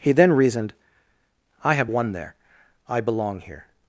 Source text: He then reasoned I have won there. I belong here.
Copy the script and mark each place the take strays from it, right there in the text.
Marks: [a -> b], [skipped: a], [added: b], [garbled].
He then reasoned I have won there. I belong here.